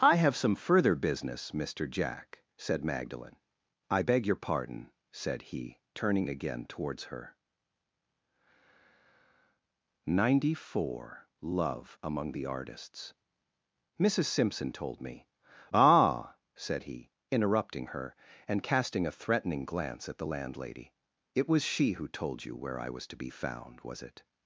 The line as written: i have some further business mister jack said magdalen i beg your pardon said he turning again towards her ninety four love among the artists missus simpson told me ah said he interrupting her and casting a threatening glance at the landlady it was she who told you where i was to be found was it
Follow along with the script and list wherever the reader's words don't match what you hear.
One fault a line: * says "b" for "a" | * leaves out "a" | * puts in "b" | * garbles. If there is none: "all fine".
all fine